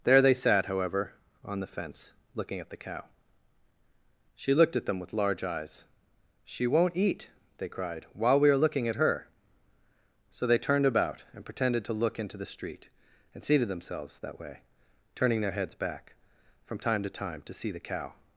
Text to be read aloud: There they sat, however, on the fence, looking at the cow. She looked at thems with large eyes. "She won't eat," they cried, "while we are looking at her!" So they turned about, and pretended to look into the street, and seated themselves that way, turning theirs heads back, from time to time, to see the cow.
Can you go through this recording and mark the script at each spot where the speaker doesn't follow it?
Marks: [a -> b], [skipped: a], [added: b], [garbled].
There they sat, however, on the fence, looking at the cow. She looked at [thems -> them] with large eyes. "She won't eat," they cried, "while we are looking at her!" So they turned about, and pretended to look into the street, and seated themselves that way, turning [theirs -> their] heads back, from time to time, to see the cow.